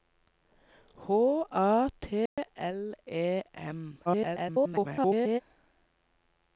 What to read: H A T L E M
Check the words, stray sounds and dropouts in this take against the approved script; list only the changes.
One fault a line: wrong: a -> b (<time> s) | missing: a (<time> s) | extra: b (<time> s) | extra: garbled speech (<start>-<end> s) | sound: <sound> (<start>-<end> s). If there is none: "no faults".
sound: dropout (2.3-2.4 s)
extra: garbled speech (4.1-5.4 s)